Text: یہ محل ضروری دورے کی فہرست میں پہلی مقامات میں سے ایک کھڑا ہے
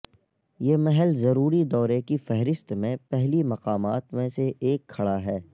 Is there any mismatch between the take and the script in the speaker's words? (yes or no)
no